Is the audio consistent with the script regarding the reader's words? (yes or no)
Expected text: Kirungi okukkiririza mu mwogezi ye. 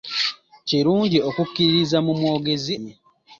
yes